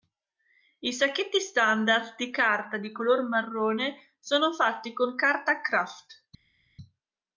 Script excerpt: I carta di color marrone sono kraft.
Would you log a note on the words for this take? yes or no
yes